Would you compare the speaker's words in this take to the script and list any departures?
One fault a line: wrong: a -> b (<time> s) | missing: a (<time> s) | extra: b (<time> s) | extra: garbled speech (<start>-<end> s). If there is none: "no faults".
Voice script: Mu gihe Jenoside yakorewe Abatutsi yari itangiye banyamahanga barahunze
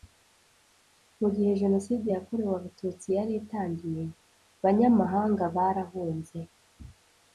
no faults